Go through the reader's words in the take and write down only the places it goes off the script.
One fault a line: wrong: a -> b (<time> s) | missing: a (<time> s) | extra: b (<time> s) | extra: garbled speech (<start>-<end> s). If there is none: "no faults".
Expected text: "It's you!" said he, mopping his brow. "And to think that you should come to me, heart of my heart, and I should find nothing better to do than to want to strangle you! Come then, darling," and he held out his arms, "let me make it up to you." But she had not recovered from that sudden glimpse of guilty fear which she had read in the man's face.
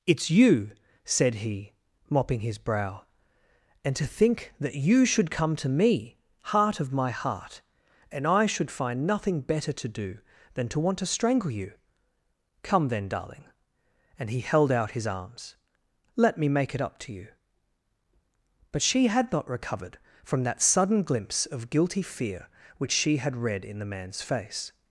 no faults